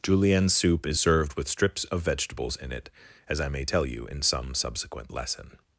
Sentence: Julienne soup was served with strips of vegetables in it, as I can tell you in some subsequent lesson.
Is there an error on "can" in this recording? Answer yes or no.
yes